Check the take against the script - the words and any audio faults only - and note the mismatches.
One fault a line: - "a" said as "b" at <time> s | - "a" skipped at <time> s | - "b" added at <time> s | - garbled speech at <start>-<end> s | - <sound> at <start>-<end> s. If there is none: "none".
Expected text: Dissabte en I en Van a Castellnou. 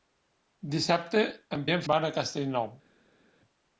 none